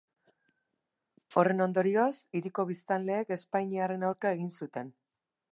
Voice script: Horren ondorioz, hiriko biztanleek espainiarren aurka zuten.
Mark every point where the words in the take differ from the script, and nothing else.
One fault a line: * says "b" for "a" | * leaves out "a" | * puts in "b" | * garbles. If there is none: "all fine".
* puts in "egin"